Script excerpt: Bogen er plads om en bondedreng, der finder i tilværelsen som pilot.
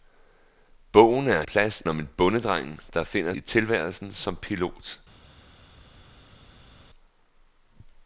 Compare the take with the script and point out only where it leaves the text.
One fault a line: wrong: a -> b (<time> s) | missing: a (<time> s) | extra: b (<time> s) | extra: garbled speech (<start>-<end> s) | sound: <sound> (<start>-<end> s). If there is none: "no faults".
no faults